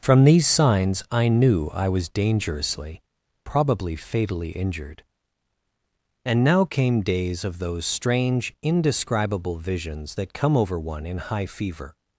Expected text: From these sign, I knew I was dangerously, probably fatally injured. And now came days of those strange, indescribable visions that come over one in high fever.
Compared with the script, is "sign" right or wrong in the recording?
wrong